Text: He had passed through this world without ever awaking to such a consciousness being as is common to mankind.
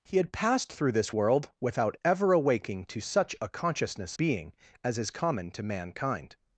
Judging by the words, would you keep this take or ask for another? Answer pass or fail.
pass